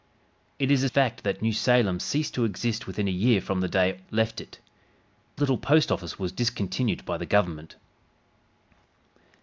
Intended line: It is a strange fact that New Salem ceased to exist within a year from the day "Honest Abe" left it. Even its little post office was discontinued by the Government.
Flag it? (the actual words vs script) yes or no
yes